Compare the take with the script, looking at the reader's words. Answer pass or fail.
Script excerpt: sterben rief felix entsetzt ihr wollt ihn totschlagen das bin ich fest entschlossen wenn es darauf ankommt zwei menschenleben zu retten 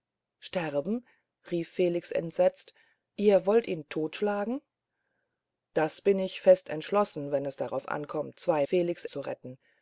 fail